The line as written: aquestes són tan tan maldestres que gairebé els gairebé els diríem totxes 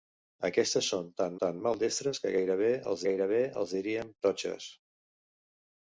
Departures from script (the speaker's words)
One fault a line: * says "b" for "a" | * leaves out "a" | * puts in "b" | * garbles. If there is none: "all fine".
all fine